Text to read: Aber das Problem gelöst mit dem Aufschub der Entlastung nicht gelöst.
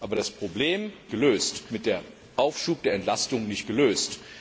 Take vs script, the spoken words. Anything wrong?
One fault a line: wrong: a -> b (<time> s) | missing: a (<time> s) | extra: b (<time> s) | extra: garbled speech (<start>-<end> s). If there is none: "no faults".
no faults